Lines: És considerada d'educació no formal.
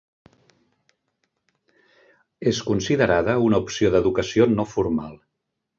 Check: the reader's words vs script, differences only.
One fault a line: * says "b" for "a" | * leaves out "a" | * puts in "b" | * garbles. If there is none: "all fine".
* puts in "una opció"